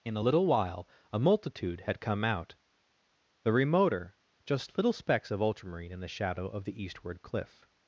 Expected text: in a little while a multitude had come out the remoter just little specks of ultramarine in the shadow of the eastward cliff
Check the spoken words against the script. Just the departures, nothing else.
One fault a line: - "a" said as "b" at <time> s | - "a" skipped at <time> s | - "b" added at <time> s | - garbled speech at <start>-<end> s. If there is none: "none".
none